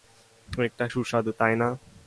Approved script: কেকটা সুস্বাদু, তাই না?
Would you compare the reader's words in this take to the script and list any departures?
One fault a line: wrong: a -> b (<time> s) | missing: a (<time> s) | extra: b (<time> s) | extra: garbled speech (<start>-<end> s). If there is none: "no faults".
no faults